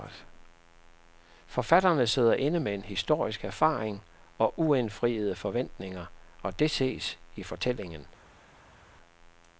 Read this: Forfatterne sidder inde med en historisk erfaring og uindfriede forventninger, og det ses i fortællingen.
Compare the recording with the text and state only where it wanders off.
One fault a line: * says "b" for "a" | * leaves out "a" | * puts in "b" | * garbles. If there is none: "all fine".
all fine